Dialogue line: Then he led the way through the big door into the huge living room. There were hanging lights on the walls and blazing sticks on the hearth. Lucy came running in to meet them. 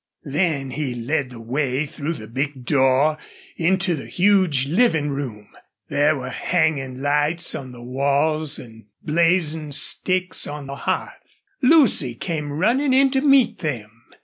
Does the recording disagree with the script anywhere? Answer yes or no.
no